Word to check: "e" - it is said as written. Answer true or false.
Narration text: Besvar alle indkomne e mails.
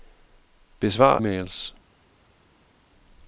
false